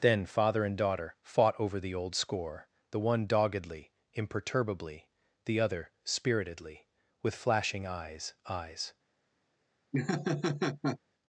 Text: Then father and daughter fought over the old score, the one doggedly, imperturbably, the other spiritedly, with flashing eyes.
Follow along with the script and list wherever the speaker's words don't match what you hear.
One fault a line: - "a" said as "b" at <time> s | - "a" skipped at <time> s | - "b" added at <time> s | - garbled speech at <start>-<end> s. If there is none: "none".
- "eyes" added at 8.5 s